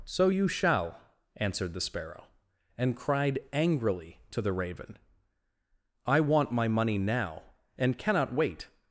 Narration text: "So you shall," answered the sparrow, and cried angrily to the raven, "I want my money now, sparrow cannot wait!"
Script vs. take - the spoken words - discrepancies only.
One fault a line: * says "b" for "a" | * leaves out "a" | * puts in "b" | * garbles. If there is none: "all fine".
* says "and" for "sparrow"